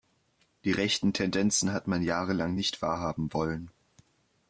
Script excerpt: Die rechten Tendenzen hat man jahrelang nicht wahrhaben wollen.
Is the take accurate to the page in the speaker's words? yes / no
yes